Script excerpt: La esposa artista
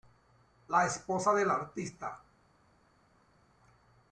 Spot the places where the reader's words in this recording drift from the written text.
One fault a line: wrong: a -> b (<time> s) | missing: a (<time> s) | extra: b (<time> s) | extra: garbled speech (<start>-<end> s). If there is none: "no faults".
extra: del (1.4 s)